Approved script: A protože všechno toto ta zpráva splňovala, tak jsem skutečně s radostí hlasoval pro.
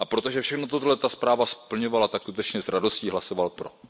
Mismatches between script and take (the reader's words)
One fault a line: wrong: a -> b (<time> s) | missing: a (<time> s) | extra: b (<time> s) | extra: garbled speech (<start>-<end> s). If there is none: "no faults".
missing: jsem (2.2 s)